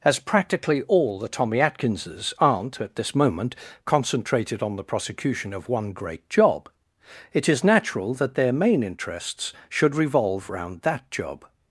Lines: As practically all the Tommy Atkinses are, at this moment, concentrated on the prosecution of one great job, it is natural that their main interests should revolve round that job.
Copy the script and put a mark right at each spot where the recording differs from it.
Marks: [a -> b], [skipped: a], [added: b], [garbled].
As practically all the Tommy Atkinses [are, -> aren't] at this moment, concentrated on the prosecution of one great job, it is natural that their main interests should revolve round that job.